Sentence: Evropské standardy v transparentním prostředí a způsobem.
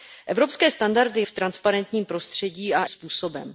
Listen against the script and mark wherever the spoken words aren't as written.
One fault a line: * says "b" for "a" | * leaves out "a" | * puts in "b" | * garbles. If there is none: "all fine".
all fine